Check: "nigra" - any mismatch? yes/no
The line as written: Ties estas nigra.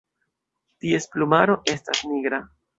no